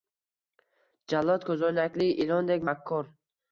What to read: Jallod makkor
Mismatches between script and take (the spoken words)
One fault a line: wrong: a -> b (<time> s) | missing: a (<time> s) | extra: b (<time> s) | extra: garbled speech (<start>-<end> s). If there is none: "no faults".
extra: ko'zoynakli ilondek (1.5 s)